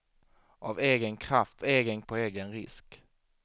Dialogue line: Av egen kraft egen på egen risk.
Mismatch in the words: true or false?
false